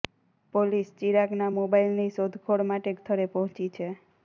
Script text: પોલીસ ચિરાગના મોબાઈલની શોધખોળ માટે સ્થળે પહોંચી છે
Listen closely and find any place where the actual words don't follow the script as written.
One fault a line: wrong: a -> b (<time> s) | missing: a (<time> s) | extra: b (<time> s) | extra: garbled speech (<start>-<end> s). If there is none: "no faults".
no faults